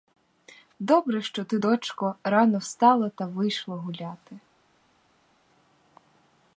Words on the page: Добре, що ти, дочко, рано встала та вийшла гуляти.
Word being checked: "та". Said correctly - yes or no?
yes